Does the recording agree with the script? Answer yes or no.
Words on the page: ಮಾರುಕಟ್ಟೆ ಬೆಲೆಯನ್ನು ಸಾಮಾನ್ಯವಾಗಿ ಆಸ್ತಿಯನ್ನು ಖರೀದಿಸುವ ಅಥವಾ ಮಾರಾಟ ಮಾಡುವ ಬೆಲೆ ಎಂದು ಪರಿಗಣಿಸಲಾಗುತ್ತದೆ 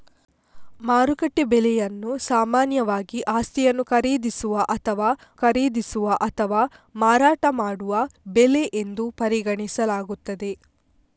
no